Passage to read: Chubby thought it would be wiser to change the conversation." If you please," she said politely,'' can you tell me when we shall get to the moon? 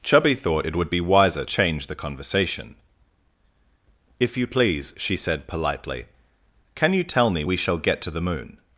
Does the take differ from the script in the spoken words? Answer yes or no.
yes